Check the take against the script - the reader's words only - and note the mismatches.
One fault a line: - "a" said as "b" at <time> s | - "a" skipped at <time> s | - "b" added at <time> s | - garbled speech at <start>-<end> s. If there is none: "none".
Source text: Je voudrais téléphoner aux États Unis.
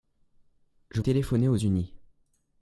- "voudrais" skipped at 1.0 s
- "États" skipped at 1.6 s